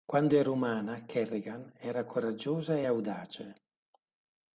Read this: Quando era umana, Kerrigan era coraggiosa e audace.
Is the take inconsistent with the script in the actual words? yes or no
no